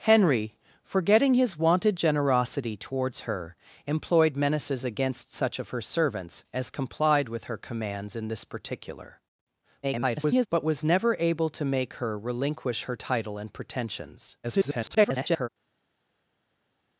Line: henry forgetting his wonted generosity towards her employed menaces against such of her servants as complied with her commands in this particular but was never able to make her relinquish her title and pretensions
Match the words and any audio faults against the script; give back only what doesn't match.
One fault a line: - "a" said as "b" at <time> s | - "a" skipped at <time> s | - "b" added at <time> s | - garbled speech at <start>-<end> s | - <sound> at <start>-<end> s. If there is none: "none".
- garbled speech at 9.8-10.5 s
- garbled speech at 14.4-15.5 s